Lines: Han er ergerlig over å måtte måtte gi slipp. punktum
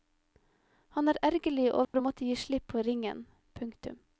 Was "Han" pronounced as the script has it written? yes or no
yes